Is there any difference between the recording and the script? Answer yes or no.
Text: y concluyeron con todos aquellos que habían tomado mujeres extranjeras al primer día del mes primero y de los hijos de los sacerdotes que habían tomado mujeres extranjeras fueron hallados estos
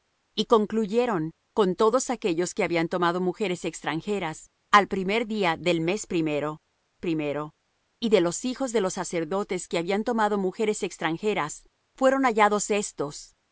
yes